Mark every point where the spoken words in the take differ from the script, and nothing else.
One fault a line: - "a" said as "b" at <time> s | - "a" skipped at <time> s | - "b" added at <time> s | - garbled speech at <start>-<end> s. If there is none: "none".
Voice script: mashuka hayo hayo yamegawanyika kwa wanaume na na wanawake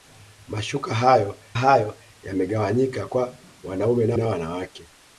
none